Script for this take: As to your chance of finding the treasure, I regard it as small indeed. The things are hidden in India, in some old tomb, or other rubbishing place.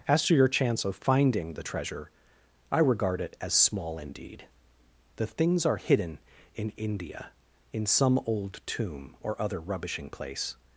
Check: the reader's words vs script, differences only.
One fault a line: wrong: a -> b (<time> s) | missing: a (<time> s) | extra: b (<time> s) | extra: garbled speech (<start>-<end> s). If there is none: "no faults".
no faults